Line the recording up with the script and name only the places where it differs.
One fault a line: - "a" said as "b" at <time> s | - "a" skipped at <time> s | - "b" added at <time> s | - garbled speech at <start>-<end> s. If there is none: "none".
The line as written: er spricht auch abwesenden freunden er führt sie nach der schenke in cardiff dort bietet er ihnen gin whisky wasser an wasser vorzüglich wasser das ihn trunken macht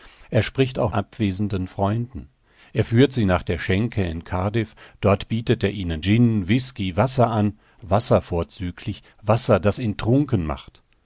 none